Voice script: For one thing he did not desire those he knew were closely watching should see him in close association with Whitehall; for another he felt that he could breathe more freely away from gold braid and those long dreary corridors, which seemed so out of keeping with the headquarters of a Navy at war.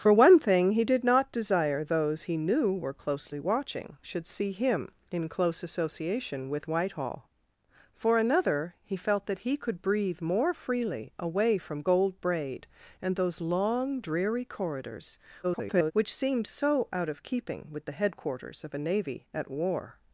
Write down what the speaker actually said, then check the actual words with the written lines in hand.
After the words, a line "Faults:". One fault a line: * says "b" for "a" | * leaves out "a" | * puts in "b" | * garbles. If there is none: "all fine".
For one thing he did not desire those he knew were closely watching should see him in close association with Whitehall; for another he felt that he could breathe more freely away from gold braid and those long dreary corridors, [garbled] which seemed so out of keeping with the headquarters of a Navy at war.
Faults:
* garbles